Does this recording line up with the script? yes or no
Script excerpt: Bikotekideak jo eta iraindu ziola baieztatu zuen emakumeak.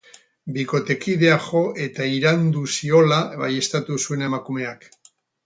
yes